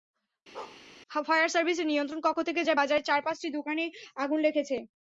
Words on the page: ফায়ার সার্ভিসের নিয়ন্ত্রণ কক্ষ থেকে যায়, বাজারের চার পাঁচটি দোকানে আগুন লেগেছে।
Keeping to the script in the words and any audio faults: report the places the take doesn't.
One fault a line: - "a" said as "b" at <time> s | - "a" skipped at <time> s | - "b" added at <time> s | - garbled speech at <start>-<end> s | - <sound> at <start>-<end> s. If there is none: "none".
- bark at 0.5-0.8 s